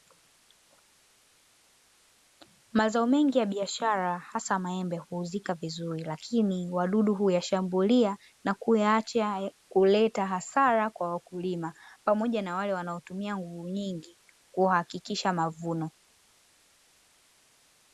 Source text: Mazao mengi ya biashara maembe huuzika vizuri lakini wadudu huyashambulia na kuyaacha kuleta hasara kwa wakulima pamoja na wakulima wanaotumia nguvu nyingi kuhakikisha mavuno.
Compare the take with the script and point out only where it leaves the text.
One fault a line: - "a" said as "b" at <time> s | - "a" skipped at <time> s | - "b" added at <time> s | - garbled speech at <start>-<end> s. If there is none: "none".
- "hasa" added at 4.2 s
- "wakulima" said as "wale" at 12.6 s